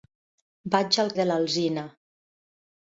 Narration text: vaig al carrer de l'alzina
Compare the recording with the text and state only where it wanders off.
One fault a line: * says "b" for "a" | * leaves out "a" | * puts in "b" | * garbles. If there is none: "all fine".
* leaves out "carrer"